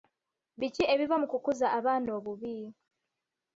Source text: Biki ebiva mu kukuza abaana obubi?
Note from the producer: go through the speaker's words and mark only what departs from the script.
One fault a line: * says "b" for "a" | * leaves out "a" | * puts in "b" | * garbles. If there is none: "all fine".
all fine